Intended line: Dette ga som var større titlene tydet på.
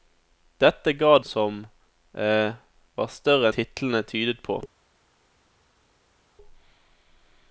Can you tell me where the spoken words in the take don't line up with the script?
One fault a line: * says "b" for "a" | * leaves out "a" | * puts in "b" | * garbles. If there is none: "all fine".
all fine